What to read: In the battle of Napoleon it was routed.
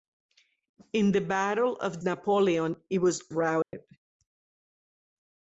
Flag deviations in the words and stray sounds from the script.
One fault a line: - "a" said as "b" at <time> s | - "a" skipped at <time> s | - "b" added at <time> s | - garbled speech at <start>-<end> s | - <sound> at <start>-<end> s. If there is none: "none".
- dropout at 3.6-3.7 s